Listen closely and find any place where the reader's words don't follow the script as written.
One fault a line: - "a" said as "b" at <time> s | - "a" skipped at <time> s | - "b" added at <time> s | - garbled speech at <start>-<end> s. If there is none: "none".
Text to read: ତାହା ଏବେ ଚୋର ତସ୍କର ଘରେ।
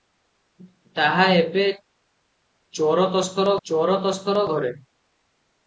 - "ଚୋର ତସ୍କର" added at 3.6 s